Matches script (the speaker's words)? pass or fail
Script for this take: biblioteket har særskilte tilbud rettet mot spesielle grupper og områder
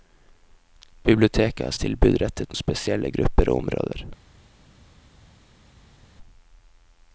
fail